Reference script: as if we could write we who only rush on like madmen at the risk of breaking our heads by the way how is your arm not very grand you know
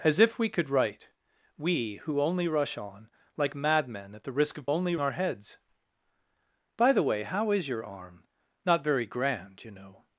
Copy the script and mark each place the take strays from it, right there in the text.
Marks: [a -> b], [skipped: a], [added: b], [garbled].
as if we could write we who only rush on like madmen at the risk of [breaking -> only] our heads by the way how is your arm not very grand you know